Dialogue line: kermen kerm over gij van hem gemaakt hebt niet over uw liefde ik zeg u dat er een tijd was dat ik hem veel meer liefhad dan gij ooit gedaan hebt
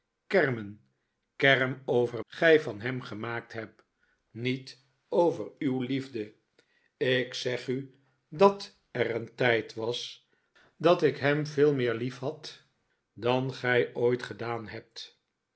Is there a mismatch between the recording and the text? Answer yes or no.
no